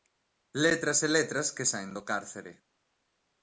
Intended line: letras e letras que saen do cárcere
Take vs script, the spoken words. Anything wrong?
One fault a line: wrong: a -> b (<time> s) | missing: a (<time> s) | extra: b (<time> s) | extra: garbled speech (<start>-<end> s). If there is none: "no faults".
no faults